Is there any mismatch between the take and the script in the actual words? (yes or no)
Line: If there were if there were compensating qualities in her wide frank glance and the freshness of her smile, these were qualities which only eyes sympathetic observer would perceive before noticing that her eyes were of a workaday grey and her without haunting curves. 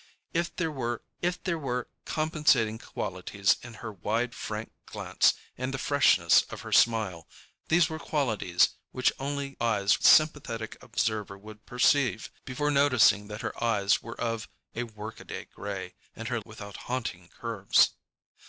no